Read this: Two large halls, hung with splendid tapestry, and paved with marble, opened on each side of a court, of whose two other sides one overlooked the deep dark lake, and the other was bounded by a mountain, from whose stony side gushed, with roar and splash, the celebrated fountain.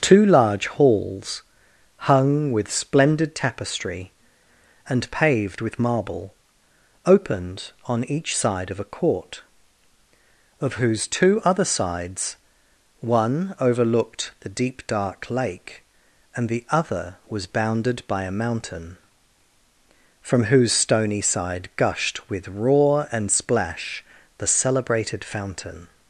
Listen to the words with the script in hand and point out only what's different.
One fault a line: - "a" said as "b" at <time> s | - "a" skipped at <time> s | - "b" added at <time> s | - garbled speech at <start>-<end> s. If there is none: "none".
none